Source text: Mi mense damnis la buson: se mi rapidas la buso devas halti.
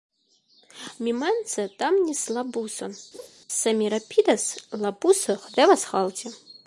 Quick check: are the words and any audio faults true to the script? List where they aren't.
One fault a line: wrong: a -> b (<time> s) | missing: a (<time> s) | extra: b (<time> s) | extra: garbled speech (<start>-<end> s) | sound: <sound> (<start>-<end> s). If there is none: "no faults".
sound: laugh (3.1-3.3 s)